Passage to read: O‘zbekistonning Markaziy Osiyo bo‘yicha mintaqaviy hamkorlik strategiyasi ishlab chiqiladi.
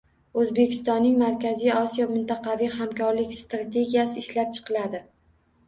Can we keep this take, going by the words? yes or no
no